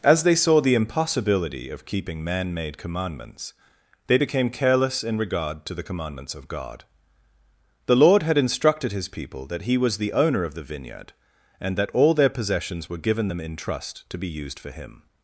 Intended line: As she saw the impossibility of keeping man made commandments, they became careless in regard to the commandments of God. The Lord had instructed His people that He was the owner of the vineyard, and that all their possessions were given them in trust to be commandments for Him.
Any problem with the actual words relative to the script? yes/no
yes